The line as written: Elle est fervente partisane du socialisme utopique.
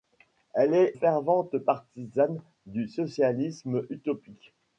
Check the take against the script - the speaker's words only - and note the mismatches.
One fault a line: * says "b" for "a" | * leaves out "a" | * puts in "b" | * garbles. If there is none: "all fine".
all fine